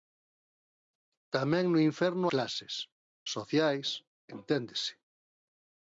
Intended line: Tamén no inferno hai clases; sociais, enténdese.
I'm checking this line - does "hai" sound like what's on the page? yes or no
no